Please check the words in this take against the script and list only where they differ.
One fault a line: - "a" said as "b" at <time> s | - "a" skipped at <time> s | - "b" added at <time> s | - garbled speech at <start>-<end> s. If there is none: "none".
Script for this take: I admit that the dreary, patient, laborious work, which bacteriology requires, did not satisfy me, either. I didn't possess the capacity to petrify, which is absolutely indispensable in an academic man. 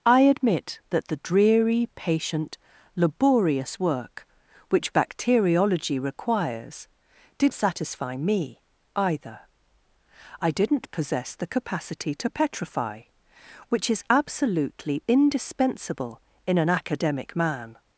- "not" skipped at 7.5 s